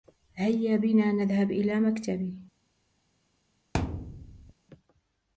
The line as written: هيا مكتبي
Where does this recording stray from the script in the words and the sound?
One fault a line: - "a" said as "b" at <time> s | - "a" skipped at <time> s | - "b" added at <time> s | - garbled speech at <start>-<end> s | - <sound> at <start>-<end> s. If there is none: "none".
- "بنا نذهب إلى" added at 0.8 s
- thud at 3.7-4.5 s